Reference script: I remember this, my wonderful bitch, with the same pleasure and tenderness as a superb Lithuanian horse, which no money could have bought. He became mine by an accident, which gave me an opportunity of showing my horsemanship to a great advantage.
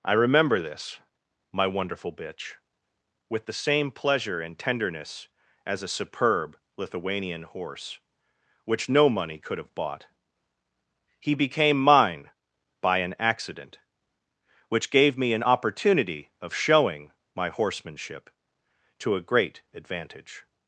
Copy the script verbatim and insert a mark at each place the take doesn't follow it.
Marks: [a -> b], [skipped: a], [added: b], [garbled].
I remember this, my wonderful bitch, with the same pleasure and tenderness as a superb Lithuanian horse, which no money could have bought. He became mine by an accident, which gave me an opportunity of showing my horsemanship to a great advantage.